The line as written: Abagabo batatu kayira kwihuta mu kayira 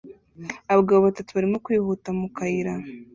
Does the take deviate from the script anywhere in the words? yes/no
yes